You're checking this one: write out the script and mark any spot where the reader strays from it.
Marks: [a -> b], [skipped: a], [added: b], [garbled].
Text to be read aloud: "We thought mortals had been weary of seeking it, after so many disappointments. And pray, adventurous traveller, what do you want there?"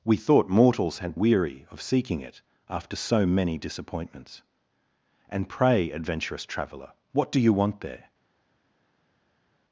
"We thought mortals had [skipped: been] weary of seeking it, after so many disappointments. And pray, adventurous traveller, what do you want there?"